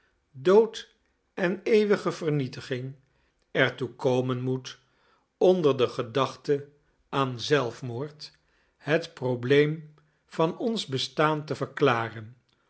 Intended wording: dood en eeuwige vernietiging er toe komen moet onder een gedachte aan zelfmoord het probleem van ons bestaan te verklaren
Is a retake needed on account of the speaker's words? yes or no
yes